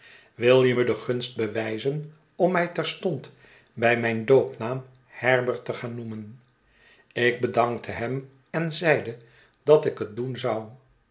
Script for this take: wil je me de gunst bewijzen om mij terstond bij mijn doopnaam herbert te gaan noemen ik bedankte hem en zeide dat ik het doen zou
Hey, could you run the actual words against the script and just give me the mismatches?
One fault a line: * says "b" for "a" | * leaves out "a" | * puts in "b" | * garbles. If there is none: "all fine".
all fine